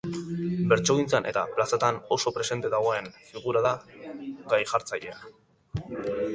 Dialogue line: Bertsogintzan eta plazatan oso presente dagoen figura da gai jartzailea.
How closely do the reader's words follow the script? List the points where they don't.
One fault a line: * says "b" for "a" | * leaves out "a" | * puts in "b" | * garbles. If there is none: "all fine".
all fine